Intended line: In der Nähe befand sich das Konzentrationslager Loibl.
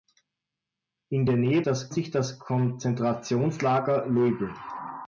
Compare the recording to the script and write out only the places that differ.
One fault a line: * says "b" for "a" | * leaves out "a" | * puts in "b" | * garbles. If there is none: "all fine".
* says "das" for "befand"